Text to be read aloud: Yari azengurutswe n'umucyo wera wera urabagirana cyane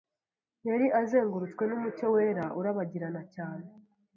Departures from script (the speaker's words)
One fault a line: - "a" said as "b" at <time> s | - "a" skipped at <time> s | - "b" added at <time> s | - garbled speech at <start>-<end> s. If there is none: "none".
- "wera" skipped at 2.5 s